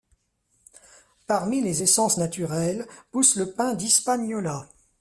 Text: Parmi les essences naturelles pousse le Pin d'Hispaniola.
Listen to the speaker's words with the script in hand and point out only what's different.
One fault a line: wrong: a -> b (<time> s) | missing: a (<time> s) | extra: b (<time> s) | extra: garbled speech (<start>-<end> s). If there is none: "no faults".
no faults